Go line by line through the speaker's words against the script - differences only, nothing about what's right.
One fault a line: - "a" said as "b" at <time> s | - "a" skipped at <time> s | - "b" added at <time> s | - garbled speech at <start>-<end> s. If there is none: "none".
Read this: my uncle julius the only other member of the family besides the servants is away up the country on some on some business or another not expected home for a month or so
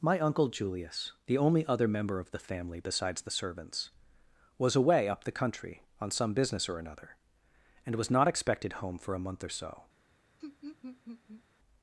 - "is" said as "was" at 4.6 s
- "on some" skipped at 6.3 s
- "and was" added at 7.8 s